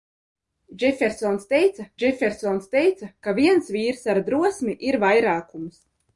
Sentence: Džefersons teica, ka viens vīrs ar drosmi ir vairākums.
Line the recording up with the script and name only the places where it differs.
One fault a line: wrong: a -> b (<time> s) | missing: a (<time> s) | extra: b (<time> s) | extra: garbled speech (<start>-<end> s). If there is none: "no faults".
extra: džefersons teica (2.0 s)